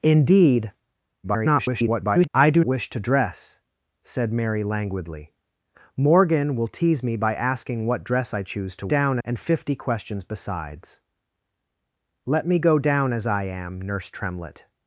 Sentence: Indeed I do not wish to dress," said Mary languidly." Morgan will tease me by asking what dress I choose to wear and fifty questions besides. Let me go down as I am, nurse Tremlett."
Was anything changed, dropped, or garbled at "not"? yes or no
yes